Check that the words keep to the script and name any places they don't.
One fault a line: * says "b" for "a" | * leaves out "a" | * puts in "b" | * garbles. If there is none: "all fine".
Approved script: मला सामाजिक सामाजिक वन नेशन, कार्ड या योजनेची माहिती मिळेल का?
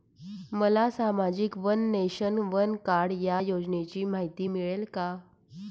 * leaves out "सामाजिक"
* puts in "वन"